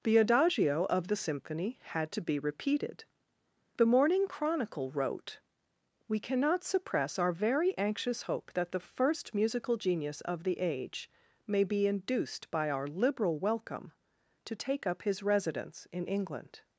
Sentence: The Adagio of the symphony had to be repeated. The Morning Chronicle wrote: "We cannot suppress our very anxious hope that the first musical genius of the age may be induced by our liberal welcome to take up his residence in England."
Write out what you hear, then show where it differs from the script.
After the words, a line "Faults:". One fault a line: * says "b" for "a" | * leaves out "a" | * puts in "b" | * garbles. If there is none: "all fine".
The Adagio of the symphony had to be repeated. The Morning Chronicle wrote: "We cannot suppress our very anxious hope that the first musical genius of the age may be induced by our liberal welcome to take up his residence in England."
Faults:
all fine